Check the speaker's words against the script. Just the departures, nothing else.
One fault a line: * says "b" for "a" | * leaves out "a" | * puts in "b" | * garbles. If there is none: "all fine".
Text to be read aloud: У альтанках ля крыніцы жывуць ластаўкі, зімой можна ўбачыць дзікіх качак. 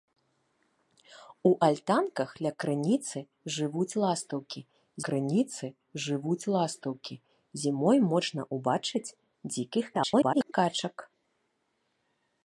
* puts in "крыніцы жывуць ластаўкі"
* garbles